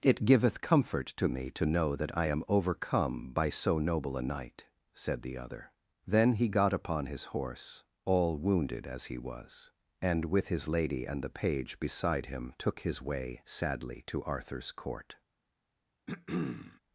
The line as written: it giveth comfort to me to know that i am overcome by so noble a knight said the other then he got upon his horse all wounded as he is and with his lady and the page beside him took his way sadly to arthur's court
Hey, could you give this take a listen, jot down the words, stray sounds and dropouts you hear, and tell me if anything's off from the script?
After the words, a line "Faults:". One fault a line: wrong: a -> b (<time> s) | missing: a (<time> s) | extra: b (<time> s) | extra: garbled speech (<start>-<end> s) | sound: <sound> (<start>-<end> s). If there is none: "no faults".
it giveth comfort to me to know that i am overcome by so noble a knight said the other then he got upon his horse all wounded as he was and with his lady and the page beside him took his way sadly to arthur's court
Faults:
wrong: is -> was (9.2 s)
sound: throat clearing (16.1-16.8 s)